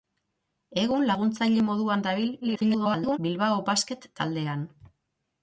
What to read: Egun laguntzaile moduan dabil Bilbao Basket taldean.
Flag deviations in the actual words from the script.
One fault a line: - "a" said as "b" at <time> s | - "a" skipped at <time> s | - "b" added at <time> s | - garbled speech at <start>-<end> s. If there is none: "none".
- garbled speech at 2.4-3.2 s